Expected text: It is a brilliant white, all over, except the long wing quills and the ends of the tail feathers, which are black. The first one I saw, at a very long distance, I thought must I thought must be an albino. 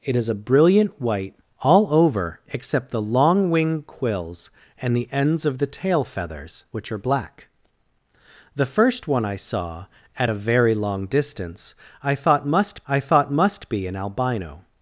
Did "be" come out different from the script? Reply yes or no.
no